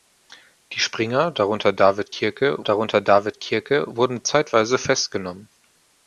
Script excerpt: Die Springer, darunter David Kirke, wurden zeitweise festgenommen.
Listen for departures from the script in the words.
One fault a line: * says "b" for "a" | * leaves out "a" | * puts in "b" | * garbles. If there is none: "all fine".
* puts in "darunter David Kirke"